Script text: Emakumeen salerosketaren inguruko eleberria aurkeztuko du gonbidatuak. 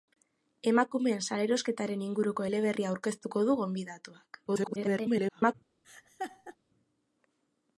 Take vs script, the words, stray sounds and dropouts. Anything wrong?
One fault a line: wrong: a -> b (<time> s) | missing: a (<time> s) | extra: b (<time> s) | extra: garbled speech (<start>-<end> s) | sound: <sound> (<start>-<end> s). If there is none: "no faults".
extra: garbled speech (4.5-5.5 s)
sound: laugh (5.8-6.6 s)